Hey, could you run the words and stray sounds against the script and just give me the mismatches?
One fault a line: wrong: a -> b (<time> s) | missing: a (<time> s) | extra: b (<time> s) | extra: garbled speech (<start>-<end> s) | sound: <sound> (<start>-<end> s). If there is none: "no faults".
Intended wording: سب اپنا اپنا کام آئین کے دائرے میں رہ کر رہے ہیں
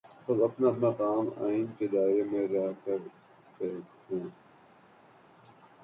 no faults